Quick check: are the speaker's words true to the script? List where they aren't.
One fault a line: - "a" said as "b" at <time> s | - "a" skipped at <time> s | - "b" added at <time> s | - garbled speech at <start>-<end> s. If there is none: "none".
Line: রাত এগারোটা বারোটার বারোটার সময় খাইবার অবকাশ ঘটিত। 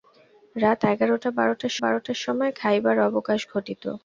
none